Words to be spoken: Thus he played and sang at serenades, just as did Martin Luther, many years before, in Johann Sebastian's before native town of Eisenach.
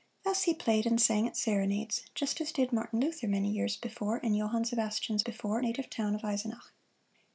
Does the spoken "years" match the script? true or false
true